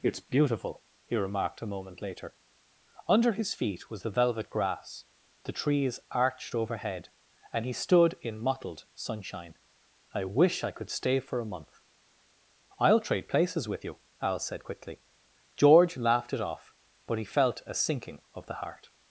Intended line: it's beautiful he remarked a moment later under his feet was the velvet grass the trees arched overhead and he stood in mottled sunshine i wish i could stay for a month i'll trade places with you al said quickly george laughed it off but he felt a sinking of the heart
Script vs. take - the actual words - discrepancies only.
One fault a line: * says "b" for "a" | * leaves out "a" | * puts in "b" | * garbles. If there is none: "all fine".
all fine